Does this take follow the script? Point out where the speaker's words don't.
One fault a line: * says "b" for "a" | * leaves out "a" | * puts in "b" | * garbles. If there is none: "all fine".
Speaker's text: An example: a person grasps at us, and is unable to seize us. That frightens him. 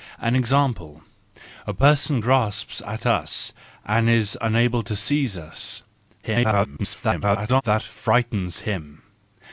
* garbles